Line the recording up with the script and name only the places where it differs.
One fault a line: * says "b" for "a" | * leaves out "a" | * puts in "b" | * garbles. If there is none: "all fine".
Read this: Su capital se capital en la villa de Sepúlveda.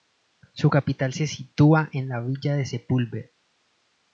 * says "sitúa" for "capital"